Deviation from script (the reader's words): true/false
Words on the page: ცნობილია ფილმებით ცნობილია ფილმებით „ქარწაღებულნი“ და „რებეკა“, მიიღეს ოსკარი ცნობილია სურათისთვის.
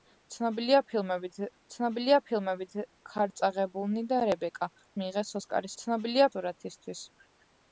false